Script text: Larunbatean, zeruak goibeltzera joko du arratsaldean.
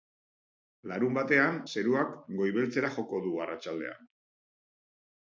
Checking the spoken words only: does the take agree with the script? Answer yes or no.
yes